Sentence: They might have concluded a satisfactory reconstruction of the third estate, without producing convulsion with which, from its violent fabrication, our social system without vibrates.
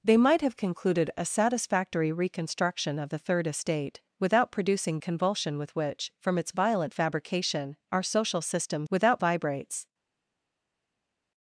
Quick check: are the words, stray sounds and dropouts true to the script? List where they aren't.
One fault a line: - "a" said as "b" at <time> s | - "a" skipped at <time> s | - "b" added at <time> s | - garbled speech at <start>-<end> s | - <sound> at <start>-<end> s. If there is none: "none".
none